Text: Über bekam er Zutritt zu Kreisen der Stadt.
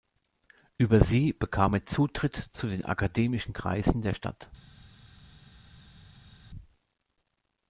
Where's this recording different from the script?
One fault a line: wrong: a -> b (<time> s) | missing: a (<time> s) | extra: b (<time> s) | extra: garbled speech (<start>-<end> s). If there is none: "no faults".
extra: sie (1.0 s)
extra: den akademischen (2.7 s)